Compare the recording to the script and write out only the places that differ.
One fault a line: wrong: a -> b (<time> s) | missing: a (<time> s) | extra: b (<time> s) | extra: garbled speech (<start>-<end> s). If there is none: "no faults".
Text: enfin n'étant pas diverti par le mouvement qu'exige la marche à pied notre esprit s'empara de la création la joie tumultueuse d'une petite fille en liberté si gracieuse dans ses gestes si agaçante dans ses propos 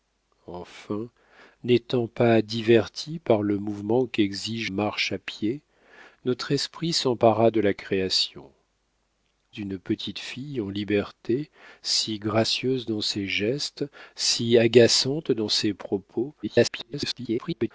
missing: la (4.7 s)
missing: la joie tumultueuse (8.5 s)
extra: garbled speech (16.4-17.7 s)